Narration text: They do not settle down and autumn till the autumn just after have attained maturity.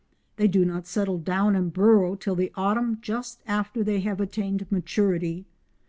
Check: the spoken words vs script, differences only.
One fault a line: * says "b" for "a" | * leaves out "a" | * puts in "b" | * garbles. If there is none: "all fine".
* says "burrow" for "autumn"
* puts in "they"